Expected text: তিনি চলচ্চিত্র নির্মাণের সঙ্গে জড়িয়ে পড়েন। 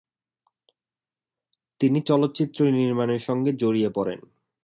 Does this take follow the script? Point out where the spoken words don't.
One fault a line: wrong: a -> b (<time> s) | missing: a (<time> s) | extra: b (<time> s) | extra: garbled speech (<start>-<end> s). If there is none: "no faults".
no faults